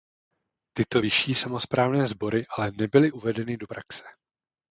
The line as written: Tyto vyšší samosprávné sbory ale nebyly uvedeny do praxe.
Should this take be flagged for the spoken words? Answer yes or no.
no